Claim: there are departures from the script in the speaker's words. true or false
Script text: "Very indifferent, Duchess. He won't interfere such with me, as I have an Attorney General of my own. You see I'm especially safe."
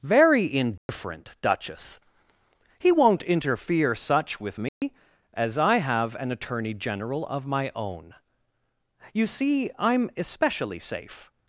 false